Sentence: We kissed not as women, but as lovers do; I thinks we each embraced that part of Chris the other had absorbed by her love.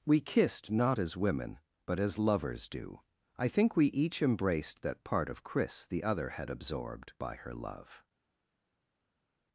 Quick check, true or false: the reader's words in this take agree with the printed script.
false